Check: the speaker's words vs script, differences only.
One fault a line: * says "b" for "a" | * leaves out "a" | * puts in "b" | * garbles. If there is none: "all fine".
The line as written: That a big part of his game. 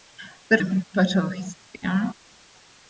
all fine